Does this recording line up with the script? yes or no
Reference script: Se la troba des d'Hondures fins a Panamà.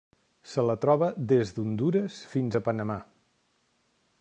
yes